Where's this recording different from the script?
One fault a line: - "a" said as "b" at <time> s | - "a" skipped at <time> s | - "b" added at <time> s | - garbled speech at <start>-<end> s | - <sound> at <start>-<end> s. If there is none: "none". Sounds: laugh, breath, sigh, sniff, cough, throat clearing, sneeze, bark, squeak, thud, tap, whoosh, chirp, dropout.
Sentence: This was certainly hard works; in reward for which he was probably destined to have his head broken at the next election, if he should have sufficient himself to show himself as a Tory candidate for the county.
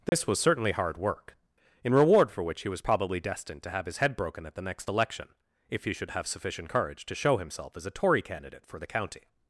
- dropout at 0.1-0.1 s
- "works" said as "work" at 1.0 s
- "himself" said as "courage" at 6.7 s